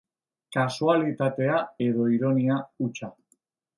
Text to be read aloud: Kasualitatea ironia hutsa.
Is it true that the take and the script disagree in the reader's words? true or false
true